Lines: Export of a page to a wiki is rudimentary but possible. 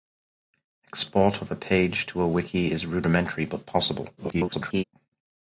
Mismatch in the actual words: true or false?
true